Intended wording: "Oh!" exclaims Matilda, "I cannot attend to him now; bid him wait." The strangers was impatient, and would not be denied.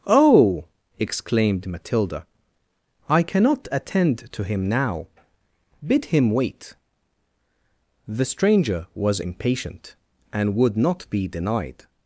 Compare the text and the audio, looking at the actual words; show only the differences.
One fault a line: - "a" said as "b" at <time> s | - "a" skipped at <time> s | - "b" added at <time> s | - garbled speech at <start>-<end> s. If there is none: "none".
- "exclaims" said as "exclaimed" at 1.0 s
- "strangers" said as "stranger" at 8.2 s